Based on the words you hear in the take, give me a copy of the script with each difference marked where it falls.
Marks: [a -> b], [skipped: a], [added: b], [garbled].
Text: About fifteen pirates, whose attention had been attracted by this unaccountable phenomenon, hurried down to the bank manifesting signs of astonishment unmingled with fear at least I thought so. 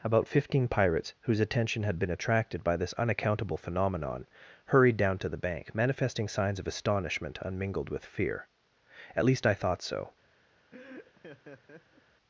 About fifteen pirates, whose attention had been attracted by this unaccountable phenomenon, hurried down to the bank manifesting signs of astonishment unmingled with fear at least I thought so.